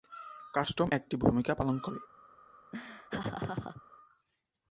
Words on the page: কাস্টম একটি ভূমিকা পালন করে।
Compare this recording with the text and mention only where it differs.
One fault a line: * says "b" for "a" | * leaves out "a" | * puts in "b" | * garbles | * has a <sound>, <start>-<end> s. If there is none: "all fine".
* has a laugh, 2.7-3.8 s